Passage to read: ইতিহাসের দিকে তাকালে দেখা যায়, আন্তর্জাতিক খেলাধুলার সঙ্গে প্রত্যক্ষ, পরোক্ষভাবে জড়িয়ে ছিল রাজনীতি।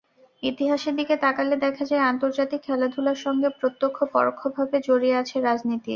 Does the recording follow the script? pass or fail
fail